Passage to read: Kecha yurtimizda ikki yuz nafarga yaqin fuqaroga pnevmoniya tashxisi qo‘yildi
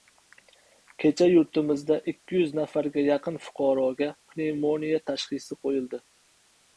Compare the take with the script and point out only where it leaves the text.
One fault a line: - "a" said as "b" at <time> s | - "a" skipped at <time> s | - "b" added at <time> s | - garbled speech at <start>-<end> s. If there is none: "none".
none